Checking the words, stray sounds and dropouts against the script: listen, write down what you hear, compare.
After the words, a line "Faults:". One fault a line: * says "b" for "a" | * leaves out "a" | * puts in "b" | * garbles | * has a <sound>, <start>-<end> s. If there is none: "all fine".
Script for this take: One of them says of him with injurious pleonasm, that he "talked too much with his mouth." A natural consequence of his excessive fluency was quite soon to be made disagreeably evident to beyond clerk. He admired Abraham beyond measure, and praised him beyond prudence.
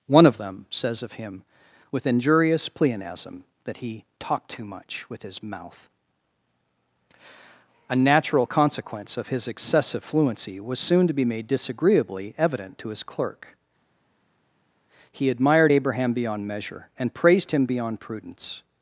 One of them says of him with injurious pleonasm, that he "talked too much with his mouth." A natural consequence of his excessive fluency was soon to be made disagreeably evident to his clerk. He admired Abraham beyond measure, and praised him beyond prudence.
Faults:
* leaves out "quite"
* says "his" for "beyond"